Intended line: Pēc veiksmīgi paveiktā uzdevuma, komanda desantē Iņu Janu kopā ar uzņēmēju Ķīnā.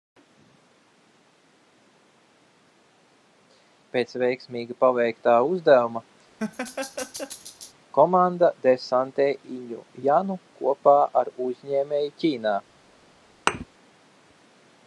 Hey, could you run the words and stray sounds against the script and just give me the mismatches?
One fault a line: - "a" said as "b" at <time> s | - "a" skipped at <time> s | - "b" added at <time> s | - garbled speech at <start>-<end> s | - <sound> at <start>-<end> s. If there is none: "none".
- laugh at 6.4-7.7 s
- thud at 13.5-13.7 s